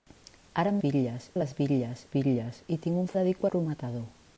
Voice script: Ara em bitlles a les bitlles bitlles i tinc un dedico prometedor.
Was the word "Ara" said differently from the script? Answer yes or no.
no